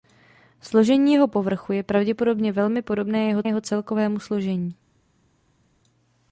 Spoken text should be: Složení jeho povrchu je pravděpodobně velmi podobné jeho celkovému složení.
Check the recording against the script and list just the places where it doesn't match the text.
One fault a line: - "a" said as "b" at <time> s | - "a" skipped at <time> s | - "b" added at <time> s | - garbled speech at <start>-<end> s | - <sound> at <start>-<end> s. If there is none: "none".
- "jeho" added at 3.5 s